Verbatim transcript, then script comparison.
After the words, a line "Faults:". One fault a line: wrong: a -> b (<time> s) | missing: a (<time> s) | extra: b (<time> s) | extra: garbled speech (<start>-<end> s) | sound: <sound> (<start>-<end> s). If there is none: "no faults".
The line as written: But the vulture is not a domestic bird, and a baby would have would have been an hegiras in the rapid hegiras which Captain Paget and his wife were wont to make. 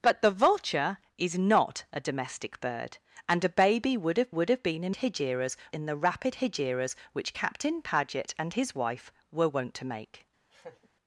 But the vulture is not a domestic bird, and a baby would have would have been an hegiras in the rapid hegiras which Captain Paget and his wife were wont to make.
Faults:
sound: laugh (10.5-10.9 s)